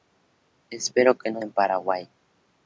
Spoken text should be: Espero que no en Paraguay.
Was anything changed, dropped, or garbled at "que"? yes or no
no